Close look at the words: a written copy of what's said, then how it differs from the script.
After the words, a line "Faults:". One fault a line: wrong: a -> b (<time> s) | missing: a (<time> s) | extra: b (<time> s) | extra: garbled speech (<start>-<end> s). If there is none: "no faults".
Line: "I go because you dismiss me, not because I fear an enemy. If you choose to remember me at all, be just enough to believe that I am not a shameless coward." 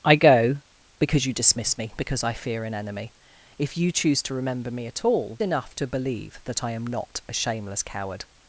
"I go because you dismiss me, because I fear an enemy. If you choose to remember me at all, enough to believe that I am not a shameless coward."
Faults:
missing: not (1.9 s)
missing: be just (5.4 s)